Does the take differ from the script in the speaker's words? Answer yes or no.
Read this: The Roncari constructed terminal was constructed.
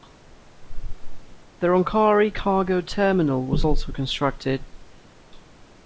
yes